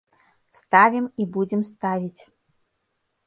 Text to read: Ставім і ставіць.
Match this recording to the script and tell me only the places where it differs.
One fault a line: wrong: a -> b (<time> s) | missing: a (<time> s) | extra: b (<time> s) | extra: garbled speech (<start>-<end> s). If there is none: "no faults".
extra: будзем (1.4 s)